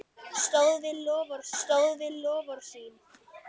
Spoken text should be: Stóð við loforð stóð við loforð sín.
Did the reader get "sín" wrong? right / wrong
right